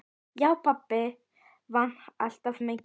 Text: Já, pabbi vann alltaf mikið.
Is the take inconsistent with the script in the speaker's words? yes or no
no